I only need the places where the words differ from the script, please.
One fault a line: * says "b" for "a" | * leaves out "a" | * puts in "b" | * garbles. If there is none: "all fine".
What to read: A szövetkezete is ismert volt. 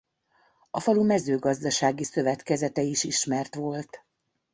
* puts in "falu mezőgazdasági"